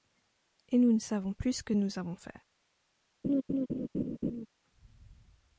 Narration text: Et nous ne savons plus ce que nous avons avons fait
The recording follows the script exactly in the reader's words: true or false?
false